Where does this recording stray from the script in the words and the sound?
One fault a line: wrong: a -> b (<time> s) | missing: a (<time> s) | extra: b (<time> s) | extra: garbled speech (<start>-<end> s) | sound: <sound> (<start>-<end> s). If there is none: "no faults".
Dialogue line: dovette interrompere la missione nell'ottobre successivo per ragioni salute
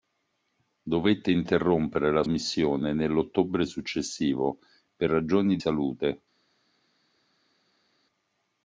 no faults